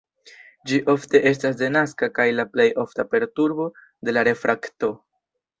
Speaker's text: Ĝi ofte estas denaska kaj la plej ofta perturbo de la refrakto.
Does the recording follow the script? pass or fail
pass